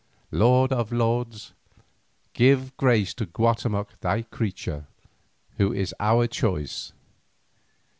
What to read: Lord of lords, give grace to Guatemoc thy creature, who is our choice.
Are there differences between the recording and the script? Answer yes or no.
no